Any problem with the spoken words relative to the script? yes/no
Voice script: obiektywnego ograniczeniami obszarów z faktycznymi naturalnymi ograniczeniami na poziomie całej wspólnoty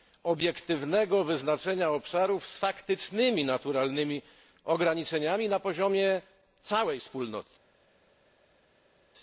yes